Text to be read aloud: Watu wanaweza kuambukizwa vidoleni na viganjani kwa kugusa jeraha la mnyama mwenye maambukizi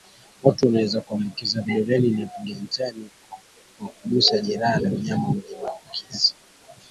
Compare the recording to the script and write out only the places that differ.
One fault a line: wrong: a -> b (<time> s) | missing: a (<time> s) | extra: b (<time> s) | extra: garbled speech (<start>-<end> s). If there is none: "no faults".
no faults